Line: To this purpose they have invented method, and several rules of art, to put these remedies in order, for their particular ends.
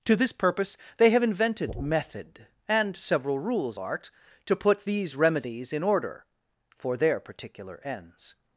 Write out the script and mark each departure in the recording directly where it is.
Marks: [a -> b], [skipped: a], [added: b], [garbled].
To this purpose they have invented method, and several rules [skipped: of] art, to put these remedies in order, for their particular ends.